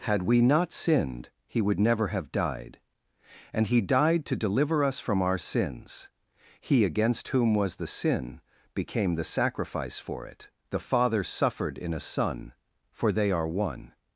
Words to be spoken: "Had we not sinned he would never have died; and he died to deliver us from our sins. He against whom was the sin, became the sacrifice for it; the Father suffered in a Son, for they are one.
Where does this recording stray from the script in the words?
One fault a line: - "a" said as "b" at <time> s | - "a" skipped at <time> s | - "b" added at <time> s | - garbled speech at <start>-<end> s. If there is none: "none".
none